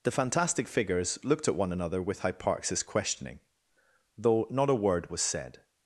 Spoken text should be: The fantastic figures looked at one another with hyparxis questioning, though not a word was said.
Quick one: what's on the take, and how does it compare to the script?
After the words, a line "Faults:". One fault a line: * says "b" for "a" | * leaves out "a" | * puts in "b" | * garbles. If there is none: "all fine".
The fantastic figures looked at one another with hyparxis questioning, though not a word was said.
Faults:
all fine